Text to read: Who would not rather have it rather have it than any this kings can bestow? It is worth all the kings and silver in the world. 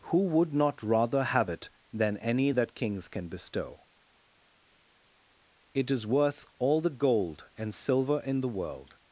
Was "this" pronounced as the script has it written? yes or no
no